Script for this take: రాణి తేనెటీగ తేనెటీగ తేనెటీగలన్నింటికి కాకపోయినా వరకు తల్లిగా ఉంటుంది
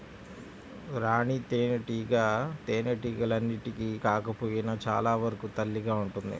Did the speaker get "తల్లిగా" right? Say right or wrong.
right